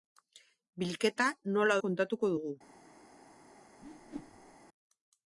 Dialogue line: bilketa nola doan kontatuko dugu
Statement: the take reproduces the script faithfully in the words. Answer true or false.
false